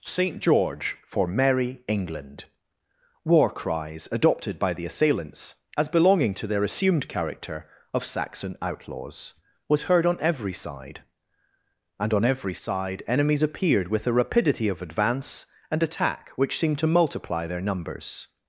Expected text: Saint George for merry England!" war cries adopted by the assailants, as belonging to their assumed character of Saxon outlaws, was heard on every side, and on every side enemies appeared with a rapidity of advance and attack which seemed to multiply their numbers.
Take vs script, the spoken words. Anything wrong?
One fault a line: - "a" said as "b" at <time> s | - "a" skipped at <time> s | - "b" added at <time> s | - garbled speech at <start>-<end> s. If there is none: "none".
none